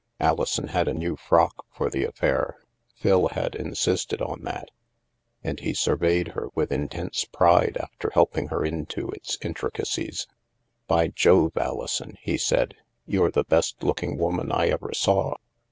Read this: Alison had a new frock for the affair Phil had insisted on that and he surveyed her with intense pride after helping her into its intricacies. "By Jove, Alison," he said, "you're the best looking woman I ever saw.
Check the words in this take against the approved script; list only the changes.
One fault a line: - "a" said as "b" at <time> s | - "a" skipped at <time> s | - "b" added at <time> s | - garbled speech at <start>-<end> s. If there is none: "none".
none